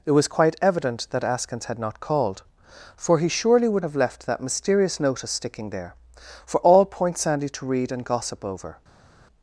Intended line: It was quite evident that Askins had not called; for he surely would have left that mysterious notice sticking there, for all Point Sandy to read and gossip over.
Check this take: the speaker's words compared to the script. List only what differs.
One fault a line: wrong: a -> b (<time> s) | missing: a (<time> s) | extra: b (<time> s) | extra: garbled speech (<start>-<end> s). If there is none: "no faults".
no faults